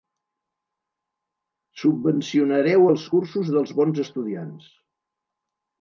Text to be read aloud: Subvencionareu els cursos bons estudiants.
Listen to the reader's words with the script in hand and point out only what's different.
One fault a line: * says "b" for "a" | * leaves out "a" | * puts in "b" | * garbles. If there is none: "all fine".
* puts in "dels"